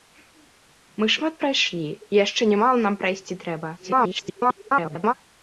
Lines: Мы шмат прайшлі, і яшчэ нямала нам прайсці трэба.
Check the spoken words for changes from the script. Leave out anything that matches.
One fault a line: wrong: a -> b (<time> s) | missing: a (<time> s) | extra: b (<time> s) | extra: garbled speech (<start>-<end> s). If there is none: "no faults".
extra: garbled speech (3.8-5.1 s)